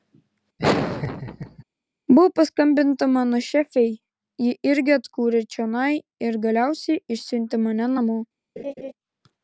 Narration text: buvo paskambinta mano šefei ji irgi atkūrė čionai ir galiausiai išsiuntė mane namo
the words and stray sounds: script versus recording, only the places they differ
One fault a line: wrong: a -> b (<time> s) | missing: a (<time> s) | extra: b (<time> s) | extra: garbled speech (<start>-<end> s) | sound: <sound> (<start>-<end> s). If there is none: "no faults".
sound: laugh (0.6-1.6 s)
sound: laugh (8.6-8.9 s)